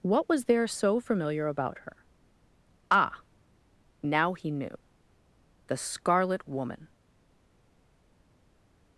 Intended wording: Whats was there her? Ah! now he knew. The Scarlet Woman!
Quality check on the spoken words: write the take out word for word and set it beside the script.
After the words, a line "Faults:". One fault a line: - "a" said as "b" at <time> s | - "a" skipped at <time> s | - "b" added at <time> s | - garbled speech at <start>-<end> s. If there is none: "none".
What was there so familiar about her? Ah! now he knew. The Scarlet Woman!
Faults:
- "Whats" said as "What" at 0.0 s
- "so familiar about" added at 0.7 s